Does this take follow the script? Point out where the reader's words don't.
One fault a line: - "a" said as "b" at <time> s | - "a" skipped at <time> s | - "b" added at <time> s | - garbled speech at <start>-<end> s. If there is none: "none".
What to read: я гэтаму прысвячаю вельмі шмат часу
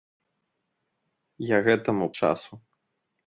- "прысвячаю вельмі шмат" skipped at 2.1 s